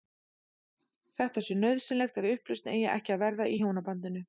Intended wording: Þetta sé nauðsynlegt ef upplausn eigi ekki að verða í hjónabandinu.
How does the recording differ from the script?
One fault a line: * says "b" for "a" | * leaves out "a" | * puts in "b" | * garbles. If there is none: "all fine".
all fine